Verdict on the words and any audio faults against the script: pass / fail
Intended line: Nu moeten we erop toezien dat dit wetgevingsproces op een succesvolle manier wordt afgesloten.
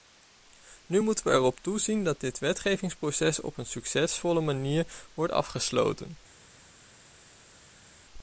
pass